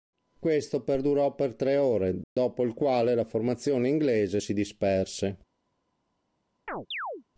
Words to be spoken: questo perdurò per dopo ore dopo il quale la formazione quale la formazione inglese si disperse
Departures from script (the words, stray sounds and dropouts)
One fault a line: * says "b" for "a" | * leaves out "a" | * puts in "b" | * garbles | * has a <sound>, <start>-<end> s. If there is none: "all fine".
* says "tre" for "dopo"
* has a dropout, 2.2-2.4 s
* leaves out "quale la formazione"
* has a chirp, 6.7-7.2 s